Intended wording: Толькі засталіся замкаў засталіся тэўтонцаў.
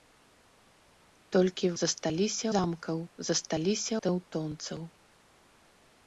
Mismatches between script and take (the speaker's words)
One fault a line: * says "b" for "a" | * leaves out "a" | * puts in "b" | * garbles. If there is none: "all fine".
all fine